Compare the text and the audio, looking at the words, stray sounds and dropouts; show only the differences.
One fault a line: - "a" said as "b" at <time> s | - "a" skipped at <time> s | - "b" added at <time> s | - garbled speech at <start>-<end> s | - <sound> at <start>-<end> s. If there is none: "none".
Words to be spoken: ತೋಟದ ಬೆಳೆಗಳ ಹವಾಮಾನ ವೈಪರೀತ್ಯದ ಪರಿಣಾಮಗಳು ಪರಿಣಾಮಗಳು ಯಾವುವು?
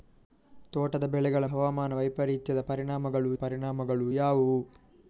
none